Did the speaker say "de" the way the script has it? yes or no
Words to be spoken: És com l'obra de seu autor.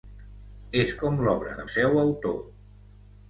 yes